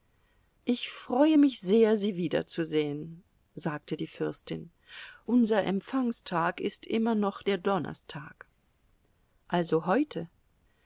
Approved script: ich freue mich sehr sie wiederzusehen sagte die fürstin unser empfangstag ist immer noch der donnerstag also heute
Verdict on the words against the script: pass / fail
pass